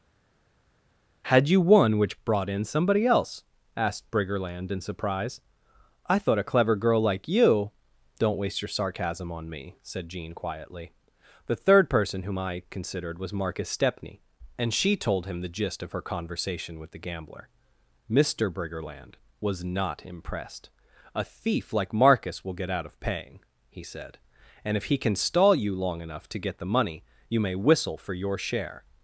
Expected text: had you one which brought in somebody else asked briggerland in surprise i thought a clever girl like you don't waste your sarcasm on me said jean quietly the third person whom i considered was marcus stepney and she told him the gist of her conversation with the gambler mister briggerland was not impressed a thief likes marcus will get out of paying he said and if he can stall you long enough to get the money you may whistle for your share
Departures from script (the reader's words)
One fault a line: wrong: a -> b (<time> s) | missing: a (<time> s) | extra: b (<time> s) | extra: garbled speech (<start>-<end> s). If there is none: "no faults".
wrong: likes -> like (21.7 s)